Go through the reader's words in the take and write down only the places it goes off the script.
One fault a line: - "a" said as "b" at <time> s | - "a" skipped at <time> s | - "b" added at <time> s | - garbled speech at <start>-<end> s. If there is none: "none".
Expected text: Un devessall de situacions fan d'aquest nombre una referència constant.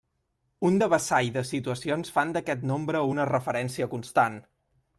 none